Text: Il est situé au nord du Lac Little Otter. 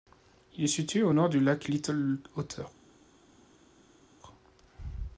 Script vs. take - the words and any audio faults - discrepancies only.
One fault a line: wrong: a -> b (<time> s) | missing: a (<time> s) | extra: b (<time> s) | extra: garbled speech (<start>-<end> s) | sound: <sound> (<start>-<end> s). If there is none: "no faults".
no faults